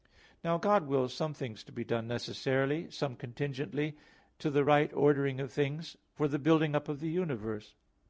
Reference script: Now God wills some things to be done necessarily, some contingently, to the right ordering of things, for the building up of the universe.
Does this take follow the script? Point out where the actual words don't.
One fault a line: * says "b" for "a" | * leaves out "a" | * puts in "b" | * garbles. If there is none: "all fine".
all fine